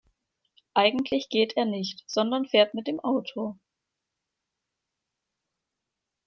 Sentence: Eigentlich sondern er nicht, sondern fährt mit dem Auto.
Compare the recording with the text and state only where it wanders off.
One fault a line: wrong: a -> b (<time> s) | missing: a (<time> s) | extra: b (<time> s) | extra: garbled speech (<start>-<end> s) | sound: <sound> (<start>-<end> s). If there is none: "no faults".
wrong: sondern -> geht (1.3 s)